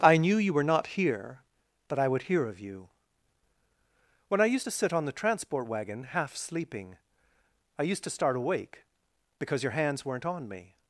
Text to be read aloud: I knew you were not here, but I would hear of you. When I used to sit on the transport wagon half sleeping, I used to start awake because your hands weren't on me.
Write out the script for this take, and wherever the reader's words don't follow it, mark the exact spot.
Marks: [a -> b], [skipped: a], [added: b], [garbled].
I knew you were not here, but I would hear of you. When I used to sit on the transport wagon half sleeping, I used to start awake because your hands weren't on me.